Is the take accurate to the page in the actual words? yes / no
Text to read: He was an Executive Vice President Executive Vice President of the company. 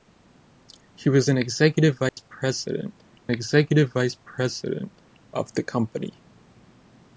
yes